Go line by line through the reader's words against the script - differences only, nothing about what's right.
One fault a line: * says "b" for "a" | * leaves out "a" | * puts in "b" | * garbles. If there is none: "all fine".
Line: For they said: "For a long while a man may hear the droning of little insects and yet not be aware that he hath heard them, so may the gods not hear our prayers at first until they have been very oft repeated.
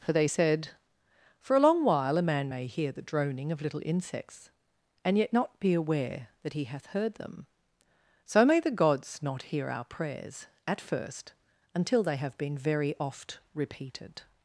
all fine